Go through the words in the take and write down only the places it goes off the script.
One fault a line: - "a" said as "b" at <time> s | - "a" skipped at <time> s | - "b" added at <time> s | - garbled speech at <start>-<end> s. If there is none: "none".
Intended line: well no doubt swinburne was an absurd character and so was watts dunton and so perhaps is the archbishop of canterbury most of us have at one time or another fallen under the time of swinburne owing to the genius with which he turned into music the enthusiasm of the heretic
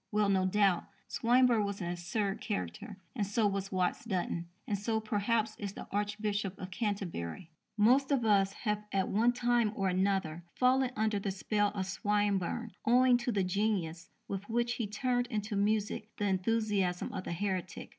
- "time" said as "spell" at 11.3 s